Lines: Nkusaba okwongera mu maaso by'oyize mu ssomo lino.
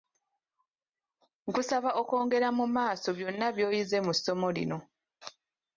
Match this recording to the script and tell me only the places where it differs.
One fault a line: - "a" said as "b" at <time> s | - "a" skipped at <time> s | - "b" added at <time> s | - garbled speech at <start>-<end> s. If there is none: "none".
- "byonna" added at 3.2 s